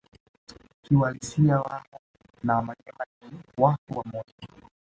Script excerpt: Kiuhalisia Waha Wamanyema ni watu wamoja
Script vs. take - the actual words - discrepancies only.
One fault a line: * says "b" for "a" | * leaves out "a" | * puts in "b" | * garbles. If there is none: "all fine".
* puts in "na"